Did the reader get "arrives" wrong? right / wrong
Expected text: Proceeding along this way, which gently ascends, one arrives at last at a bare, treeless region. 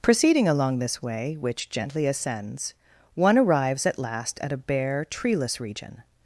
right